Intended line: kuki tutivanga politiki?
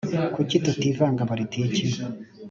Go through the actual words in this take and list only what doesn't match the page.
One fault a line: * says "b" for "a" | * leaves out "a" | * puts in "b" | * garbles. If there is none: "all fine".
all fine